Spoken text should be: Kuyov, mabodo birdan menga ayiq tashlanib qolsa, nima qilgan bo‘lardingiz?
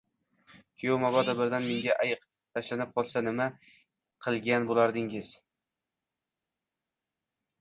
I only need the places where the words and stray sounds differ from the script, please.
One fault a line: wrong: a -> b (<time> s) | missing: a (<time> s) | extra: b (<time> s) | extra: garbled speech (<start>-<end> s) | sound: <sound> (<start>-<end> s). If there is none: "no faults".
no faults